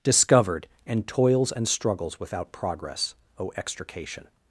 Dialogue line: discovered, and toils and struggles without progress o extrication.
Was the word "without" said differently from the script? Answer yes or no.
no